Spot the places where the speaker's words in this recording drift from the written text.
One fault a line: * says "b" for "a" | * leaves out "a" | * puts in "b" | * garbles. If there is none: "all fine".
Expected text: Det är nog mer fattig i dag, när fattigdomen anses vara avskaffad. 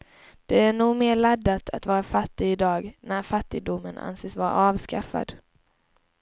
* puts in "laddat att vara"